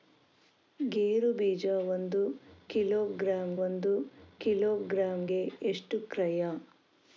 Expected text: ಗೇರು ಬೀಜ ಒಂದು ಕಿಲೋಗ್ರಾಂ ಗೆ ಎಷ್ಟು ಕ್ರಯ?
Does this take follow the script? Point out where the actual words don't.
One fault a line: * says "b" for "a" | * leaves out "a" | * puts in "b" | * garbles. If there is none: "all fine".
* puts in "ಒಂದು ಕಿಲೋಗ್ರಾಂ"